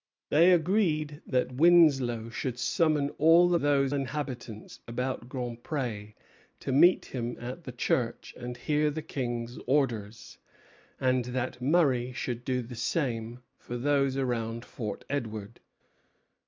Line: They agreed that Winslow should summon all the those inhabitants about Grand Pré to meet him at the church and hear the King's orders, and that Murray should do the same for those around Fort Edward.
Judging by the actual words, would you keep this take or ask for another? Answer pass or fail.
pass